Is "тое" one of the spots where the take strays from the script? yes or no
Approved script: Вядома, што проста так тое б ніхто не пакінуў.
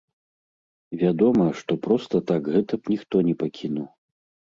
yes